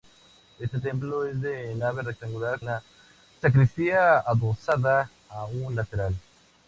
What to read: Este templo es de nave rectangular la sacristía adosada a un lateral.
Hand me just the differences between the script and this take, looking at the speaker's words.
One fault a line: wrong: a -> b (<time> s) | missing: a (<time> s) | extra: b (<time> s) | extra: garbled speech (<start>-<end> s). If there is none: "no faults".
no faults